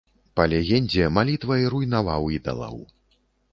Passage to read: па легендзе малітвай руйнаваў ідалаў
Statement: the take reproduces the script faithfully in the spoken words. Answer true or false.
true